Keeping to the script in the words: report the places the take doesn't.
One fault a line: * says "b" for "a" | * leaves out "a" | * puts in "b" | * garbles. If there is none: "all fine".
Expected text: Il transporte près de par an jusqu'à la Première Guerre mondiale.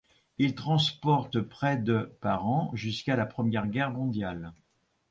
all fine